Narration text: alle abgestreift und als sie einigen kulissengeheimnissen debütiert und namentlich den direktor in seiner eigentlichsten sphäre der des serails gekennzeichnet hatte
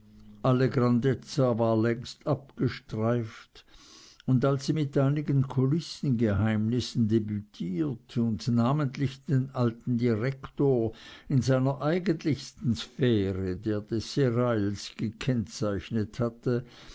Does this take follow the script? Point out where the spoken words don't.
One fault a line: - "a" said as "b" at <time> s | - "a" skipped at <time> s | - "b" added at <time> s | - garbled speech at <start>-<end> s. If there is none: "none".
- "grandezza war längst" added at 0.7 s
- "mit" added at 4.7 s
- "alten" added at 9.5 s